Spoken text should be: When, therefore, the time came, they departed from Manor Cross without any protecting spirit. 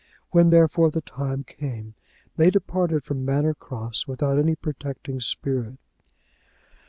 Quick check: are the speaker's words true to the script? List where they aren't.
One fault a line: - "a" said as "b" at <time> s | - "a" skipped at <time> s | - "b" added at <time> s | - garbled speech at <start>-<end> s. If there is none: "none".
none